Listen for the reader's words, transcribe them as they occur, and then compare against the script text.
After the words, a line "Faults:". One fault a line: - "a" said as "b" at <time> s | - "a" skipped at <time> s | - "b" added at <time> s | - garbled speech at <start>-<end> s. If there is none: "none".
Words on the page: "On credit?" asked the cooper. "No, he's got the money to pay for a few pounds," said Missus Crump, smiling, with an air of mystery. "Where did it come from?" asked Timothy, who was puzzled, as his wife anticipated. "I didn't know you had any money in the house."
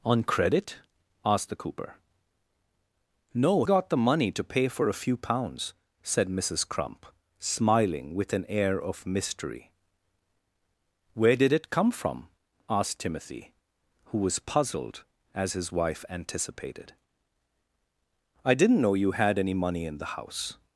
"On credit?" asked the cooper. "No, got the money to pay for a few pounds," said Missus Crump, smiling, with an air of mystery. "Where did it come from?" asked Timothy, who was puzzled, as his wife anticipated. "I didn't know you had any money in the house."
Faults:
- "he's" skipped at 3.6 s